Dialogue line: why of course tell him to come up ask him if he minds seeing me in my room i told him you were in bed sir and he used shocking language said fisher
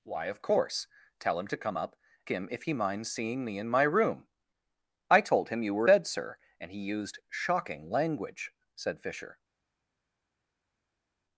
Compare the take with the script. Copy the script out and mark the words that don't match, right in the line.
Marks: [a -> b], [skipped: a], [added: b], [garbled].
why of course tell him to come up [skipped: ask] him if he minds seeing me in my room i told him you were [skipped: in] bed sir and he used shocking language said fisher